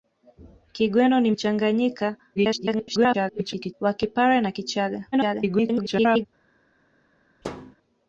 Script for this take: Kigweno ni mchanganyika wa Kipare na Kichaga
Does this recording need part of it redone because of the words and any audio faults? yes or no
yes